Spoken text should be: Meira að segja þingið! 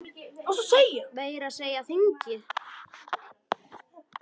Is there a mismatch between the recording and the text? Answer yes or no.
no